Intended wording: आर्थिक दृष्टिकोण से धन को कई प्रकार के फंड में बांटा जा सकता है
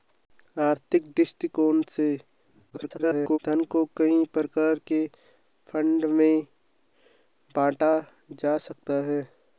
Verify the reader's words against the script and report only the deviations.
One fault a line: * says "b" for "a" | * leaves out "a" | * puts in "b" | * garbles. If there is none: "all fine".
* garbles